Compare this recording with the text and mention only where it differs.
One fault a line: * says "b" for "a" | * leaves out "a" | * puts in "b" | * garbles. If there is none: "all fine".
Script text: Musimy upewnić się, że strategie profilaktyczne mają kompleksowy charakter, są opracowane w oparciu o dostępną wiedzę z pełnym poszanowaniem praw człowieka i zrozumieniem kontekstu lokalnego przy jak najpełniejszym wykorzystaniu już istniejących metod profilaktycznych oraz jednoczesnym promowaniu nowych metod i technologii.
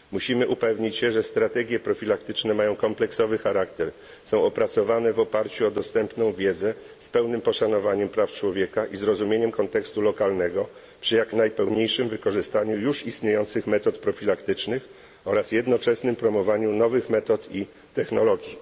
all fine